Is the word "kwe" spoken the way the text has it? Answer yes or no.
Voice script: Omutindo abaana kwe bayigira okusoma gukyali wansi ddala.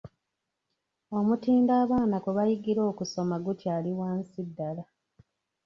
yes